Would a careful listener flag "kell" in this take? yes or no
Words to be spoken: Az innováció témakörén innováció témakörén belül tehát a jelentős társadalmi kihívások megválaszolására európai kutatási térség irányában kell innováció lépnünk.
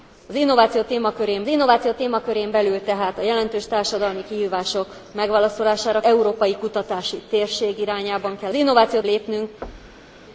no